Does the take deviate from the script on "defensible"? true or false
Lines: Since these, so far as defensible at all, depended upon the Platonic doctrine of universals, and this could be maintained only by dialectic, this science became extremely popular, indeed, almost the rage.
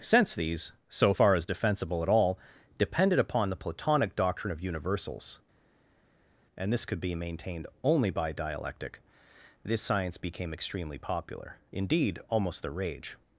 false